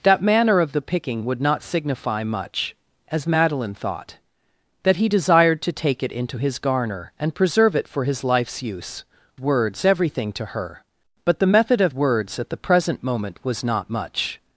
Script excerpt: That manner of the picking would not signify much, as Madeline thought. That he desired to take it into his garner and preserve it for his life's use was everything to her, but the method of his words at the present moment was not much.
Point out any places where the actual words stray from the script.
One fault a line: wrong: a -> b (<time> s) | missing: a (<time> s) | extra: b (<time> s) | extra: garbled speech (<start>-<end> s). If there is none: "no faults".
wrong: was -> words (9.4 s)
missing: his (11.9 s)